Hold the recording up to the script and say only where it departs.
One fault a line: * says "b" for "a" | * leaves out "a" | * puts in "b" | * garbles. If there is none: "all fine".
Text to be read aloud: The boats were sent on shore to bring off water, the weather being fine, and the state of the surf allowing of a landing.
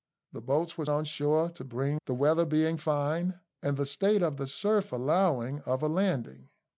* leaves out "sent"
* leaves out "off water"